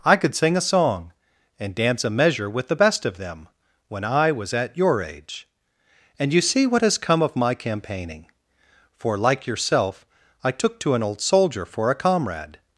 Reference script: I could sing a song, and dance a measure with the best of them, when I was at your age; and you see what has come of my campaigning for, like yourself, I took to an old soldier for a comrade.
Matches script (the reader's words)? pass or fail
pass